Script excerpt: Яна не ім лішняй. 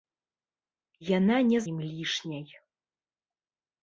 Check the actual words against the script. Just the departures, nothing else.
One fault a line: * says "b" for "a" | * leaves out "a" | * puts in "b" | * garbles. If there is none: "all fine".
all fine